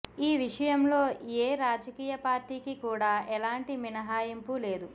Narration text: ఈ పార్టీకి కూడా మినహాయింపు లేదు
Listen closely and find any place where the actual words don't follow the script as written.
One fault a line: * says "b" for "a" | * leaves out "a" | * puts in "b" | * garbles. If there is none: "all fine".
* puts in "విషయంలో ఏ రాజకీయ"
* puts in "ఎలాంటి"